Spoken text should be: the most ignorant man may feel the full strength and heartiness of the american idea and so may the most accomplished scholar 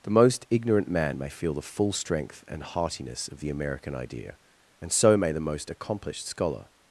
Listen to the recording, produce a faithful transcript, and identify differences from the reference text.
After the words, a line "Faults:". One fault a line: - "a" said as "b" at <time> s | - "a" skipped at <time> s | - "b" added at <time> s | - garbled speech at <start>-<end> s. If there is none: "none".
the most ignorant man may feel the full strength and heartiness of the american idea and so may the most accomplished scholar
Faults:
none